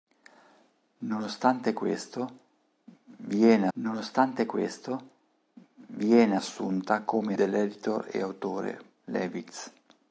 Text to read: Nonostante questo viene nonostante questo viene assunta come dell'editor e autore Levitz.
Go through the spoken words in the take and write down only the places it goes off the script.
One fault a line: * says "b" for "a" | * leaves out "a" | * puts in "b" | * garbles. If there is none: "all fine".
all fine